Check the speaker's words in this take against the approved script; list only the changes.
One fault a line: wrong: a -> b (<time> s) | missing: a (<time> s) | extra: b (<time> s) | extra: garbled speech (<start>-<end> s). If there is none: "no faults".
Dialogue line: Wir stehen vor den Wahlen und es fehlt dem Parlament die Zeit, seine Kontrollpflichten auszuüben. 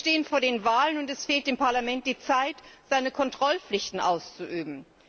no faults